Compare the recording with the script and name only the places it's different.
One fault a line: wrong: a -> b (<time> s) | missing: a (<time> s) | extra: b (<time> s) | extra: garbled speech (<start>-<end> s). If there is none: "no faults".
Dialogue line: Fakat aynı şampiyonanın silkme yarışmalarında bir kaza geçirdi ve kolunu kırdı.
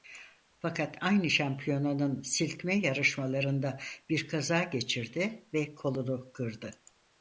no faults